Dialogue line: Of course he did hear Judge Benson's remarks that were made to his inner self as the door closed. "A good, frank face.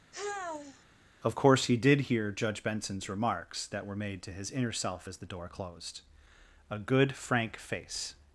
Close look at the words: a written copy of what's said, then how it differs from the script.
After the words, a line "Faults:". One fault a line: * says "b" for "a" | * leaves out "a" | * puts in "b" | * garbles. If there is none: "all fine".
Of course he did hear Judge Benson's remarks that were made to his inner self as the door closed. "A good, frank face.
Faults:
all fine